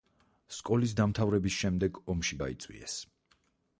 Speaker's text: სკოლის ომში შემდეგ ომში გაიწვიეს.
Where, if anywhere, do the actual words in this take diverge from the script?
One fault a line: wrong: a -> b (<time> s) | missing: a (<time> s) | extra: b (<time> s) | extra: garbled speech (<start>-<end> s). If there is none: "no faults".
wrong: ომში -> დამთავრების (1.0 s)